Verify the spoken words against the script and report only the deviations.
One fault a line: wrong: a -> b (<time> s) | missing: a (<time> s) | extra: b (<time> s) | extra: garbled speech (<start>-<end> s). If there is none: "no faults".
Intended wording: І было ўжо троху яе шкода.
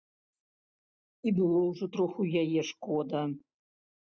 no faults